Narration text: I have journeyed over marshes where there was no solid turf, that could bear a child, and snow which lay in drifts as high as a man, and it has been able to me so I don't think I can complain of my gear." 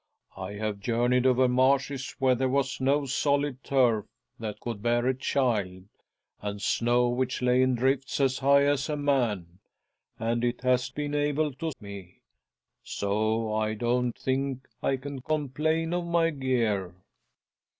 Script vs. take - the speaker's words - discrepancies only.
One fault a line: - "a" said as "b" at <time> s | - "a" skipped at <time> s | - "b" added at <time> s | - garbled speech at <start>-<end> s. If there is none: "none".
none